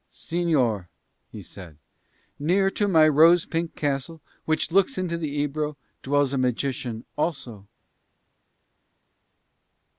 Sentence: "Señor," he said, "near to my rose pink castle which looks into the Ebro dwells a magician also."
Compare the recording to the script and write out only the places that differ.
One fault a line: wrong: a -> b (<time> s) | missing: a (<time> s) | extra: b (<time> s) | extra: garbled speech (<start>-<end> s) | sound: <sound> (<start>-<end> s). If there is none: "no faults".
no faults